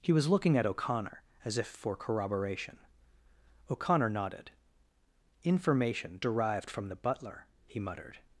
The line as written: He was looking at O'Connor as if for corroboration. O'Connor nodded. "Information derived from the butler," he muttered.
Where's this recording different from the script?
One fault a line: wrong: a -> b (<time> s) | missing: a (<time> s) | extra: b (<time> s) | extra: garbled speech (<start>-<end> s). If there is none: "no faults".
no faults